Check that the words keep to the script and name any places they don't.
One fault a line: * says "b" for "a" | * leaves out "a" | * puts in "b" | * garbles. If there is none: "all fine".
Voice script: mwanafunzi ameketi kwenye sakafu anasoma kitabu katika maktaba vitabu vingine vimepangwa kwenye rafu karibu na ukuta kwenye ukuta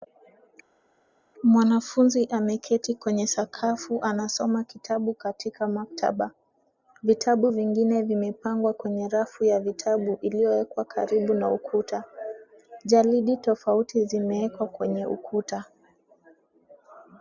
* puts in "ya vitabu iliyowekwa"
* puts in "jalidi tofauti zimewekwa"